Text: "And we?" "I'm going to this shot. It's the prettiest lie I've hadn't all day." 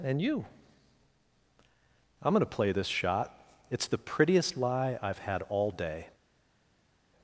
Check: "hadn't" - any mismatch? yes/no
yes